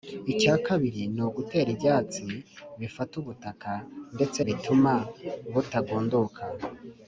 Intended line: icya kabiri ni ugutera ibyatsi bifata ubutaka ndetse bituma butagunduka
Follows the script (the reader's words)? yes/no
yes